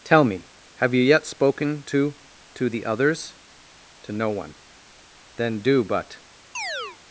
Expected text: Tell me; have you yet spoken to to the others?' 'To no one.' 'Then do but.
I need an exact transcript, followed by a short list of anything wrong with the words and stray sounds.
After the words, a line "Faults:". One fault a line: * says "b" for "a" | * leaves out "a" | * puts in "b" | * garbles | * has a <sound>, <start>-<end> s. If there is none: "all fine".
Tell me; have you yet spoken to to the others?' 'To no one.' 'Then do but.
Faults:
* has a chirp, 6.5-7.0 s